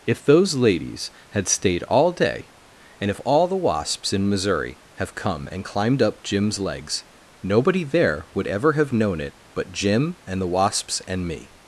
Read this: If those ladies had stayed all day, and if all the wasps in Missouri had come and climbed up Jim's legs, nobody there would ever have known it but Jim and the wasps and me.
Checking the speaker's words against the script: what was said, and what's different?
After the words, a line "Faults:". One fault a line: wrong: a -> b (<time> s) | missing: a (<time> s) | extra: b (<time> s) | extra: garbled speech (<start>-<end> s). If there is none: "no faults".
If those ladies had stayed all day, and if all the wasps in Missouri have come and climbed up Jim's legs, nobody there would ever have known it but Jim and the wasps and me.
Faults:
wrong: had -> have (5.0 s)